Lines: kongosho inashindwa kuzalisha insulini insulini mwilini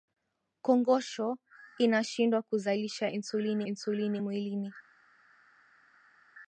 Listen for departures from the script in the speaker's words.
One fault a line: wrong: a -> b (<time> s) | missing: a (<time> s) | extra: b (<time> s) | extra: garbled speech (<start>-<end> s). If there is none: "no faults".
no faults